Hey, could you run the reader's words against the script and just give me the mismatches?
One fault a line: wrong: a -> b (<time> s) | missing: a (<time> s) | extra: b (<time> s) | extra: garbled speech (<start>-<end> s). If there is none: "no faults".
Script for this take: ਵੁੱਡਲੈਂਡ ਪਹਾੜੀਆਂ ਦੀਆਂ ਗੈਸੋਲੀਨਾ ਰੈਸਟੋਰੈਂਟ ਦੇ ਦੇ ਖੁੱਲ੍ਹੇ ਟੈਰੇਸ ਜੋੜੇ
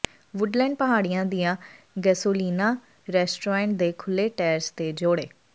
missing: ਦੇ (3.9 s)
extra: ਤੇ (4.7 s)